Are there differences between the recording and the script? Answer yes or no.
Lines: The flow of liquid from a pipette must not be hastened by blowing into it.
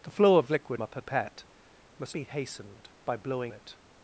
yes